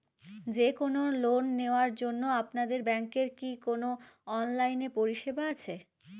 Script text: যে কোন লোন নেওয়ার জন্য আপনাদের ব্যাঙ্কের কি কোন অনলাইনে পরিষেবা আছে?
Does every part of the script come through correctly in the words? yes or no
yes